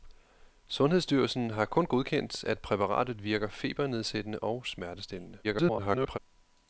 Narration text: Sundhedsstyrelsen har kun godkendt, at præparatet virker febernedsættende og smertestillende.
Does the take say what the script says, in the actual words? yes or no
no